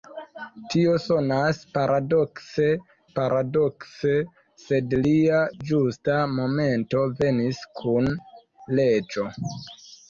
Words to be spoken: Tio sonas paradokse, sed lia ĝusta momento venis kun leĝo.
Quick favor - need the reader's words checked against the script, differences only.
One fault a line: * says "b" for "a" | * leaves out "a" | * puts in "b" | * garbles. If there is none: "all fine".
* puts in "paradokse"